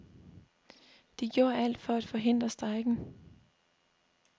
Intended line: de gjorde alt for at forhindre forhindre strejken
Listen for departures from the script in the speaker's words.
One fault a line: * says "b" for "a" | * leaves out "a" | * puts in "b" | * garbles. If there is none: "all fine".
* leaves out "forhindre"